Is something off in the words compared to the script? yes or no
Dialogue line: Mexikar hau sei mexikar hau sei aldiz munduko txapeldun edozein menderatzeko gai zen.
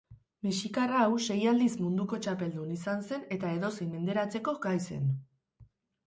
yes